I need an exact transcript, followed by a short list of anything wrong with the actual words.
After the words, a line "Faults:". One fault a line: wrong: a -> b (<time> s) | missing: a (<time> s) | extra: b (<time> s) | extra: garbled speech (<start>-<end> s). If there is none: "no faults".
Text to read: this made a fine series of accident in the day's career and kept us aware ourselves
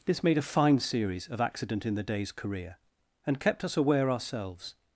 this made a fine series of accident in the day's career and kept us aware ourselves
Faults:
no faults